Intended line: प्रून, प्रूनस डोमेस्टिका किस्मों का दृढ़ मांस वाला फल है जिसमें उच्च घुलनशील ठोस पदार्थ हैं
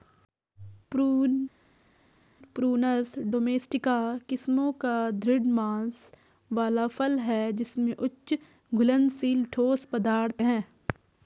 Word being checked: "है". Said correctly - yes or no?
yes